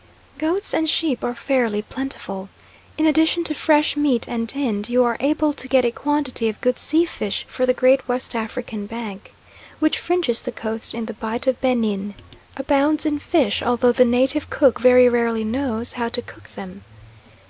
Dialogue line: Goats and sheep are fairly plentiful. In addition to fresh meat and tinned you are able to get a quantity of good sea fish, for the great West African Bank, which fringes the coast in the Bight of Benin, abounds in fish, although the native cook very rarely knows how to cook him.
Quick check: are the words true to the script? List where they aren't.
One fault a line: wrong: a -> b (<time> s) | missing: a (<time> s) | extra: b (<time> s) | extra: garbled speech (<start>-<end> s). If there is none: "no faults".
wrong: him -> them (16.5 s)